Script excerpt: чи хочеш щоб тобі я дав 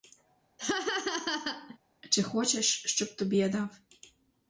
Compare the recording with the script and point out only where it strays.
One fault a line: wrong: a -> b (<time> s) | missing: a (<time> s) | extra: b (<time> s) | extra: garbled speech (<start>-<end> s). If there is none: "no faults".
no faults